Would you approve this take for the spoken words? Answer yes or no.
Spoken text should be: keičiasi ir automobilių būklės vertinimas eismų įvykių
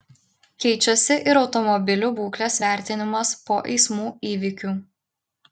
no